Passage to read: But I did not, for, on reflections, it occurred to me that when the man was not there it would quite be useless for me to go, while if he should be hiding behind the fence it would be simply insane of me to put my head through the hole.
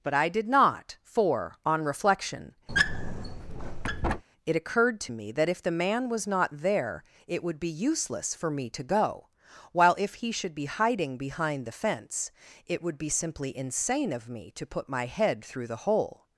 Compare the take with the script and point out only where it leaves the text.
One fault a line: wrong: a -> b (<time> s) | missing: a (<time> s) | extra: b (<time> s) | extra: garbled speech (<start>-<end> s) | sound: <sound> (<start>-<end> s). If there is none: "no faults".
wrong: reflections -> reflection (1.9 s)
sound: squeak (2.7-4.2 s)
wrong: when -> if (5.5 s)
missing: quite (7.6 s)